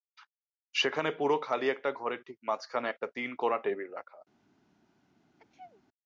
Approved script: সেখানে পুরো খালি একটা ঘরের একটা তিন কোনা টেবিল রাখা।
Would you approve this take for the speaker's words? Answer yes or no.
no